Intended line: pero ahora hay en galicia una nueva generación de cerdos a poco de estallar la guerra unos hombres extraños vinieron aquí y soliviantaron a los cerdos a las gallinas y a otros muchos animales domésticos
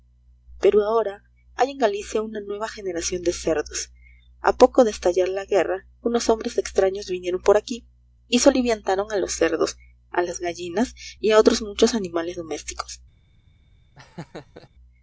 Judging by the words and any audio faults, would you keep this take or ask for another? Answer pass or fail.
fail